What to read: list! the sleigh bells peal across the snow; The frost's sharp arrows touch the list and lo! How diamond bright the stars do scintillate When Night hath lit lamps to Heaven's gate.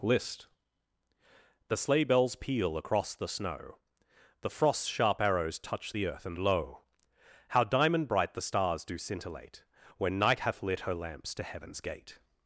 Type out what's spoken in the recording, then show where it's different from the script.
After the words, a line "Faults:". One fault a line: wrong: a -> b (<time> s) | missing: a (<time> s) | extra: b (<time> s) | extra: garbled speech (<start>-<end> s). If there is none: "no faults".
list! the sleigh bells peal across the snow; The frost's sharp arrows touch the earth and lo! How diamond bright the stars do scintillate When Night hath lit her lamps to Heaven's gate.
Faults:
wrong: list -> earth (6.1 s)
extra: her (10.8 s)